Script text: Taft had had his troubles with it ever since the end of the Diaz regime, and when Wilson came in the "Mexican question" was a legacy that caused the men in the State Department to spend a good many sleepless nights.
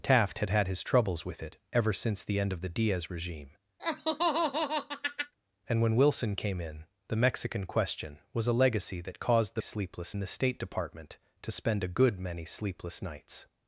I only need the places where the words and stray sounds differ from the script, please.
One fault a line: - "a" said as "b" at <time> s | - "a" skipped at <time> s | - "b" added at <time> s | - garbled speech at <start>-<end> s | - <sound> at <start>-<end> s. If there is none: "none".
- laugh at 3.8-5.3 s
- "men" said as "sleepless" at 9.6 s